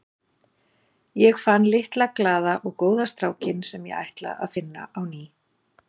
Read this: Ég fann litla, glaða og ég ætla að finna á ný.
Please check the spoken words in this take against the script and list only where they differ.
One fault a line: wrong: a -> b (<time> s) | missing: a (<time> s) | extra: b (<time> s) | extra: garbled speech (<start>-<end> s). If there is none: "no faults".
extra: góða strákinn sem (2.9 s)